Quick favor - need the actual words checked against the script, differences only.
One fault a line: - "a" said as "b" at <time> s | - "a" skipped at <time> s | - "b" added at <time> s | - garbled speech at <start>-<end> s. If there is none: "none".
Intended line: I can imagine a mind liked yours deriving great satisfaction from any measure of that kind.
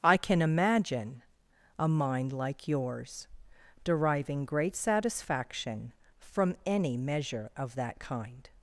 - "liked" said as "like" at 2.3 s